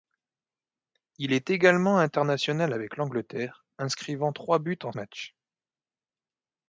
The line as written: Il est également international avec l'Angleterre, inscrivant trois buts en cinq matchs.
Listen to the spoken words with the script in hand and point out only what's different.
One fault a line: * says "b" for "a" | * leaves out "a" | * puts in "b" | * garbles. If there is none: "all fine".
* leaves out "cinq"